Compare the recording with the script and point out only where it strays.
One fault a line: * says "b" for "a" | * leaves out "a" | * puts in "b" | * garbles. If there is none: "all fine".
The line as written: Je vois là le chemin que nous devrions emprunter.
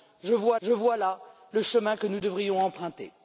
* puts in "je vois"